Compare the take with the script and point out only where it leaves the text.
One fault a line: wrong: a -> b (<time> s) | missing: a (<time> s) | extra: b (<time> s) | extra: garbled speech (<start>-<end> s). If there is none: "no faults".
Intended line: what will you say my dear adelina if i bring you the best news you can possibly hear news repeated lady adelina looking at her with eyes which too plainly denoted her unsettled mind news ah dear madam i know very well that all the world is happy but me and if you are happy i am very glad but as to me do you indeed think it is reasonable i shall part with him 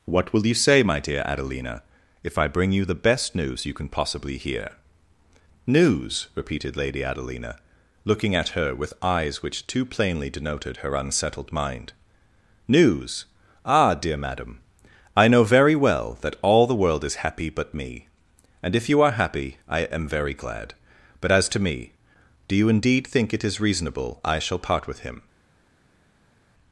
no faults